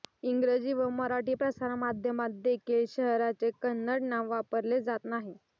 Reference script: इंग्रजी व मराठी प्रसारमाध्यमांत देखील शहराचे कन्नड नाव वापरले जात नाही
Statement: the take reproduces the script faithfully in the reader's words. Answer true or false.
true